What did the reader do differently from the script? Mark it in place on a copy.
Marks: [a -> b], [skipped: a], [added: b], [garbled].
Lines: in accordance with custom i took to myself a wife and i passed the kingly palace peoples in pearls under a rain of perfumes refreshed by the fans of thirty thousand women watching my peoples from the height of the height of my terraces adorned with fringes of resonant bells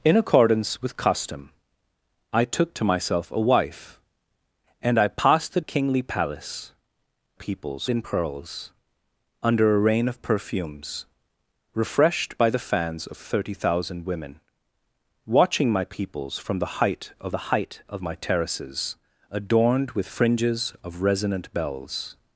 in accordance with custom i took to myself a wife and i passed the kingly palace peoples in pearls under a rain of perfumes refreshed by the fans of thirty thousand women watching my peoples from the height of the height of my terraces adorned with fringes of resonant bells